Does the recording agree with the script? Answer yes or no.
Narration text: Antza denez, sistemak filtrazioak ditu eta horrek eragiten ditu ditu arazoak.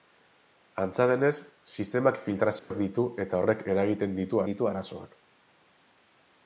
yes